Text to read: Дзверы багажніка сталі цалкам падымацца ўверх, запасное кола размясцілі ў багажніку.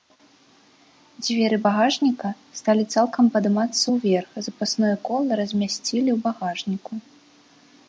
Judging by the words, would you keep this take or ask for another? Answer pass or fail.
pass